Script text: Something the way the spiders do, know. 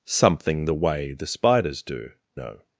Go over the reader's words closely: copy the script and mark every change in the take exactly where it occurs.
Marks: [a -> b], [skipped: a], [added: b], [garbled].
Something the way the spiders do, know.